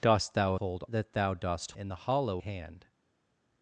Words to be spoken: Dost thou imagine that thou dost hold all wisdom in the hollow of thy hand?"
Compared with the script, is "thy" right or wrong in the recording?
wrong